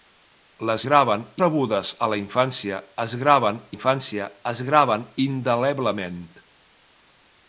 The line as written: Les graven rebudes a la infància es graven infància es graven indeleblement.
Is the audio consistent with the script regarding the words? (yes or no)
yes